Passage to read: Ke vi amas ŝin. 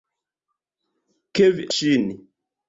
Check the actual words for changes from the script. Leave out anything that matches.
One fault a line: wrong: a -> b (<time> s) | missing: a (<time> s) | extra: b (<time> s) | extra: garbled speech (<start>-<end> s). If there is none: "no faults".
missing: amas (1.7 s)